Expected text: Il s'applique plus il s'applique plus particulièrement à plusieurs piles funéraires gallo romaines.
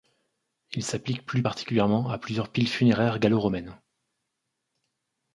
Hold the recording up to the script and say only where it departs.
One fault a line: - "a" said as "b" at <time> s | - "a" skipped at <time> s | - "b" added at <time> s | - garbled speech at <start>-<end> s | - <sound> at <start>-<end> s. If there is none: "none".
- "il s'applique plus" skipped at 1.4 s